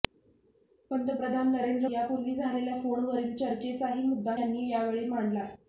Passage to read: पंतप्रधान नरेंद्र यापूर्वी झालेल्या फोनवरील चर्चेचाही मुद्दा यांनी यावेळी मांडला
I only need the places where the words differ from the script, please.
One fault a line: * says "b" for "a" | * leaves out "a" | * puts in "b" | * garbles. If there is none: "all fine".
all fine